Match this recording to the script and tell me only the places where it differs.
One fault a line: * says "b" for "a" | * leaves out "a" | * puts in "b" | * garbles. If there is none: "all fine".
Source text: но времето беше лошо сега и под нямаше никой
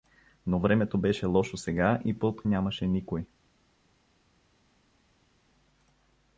all fine